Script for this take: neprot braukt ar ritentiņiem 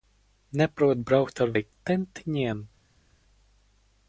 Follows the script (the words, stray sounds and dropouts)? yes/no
yes